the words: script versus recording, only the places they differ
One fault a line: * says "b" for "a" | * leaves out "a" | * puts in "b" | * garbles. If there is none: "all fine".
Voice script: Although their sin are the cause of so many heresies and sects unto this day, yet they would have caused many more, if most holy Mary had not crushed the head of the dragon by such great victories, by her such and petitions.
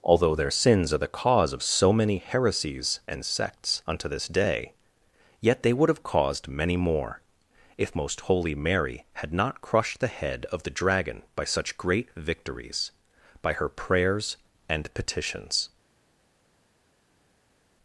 * says "sins" for "sin"
* says "prayers" for "such"